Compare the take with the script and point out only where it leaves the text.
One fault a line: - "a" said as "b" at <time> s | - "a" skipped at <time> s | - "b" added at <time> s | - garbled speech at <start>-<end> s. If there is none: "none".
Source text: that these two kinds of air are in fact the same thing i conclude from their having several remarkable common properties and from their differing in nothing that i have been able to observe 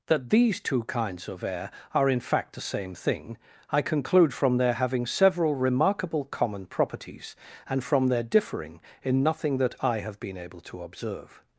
none